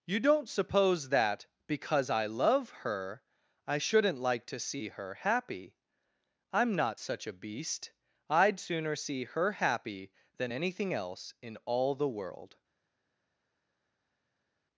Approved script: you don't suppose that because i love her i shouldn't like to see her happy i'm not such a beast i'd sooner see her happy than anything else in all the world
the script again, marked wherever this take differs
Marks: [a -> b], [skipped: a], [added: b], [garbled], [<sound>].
you don't suppose that because i love her i shouldn't like to see her happy i'm not such a beast i'd sooner see her happy than anything else in all the world